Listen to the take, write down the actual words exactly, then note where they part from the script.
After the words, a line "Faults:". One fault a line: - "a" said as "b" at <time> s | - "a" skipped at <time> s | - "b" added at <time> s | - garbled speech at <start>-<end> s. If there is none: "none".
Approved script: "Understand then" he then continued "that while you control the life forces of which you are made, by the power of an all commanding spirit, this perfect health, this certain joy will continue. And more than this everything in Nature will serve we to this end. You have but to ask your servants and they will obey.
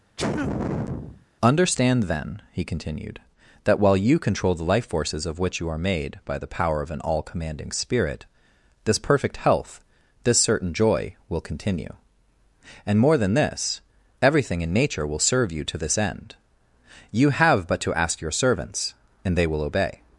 "Understand then" he continued "that while you control the life forces of which you are made, by the power of an all commanding spirit, this perfect health, this certain joy will continue. And more than this everything in Nature will serve you to this end. You have but to ask your servants and they will obey.
Faults:
- "then" skipped at 2.6 s
- "we" said as "you" at 15.5 s